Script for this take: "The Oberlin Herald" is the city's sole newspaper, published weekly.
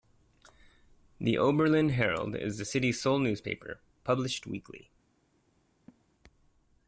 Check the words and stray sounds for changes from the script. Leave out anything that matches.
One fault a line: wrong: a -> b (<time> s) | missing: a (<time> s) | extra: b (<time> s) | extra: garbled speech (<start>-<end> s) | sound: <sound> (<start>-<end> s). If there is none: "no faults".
sound: laugh (5.9-6.0 s)